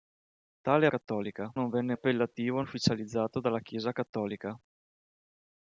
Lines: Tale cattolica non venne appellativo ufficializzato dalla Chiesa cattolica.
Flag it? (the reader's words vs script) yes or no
no